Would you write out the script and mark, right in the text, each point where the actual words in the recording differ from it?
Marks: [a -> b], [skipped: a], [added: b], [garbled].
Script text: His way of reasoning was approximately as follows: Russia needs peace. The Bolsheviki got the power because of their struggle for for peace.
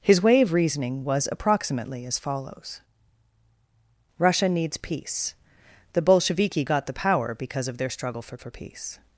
His way of reasoning was approximately as follows: Russia needs peace. The Bolsheviki got the power because of their struggle for for peace.